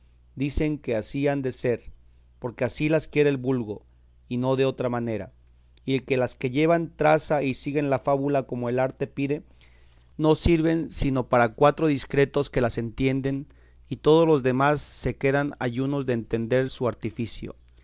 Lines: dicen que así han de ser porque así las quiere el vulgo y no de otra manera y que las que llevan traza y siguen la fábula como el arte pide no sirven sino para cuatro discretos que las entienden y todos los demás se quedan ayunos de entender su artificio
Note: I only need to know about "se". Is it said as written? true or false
true